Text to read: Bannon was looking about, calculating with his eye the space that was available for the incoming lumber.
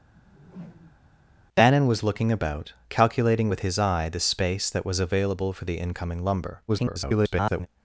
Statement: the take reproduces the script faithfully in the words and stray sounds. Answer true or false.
false